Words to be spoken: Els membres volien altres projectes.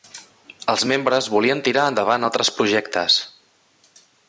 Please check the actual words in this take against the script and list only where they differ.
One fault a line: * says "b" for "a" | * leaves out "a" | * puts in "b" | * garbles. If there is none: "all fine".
* puts in "tirar endavant"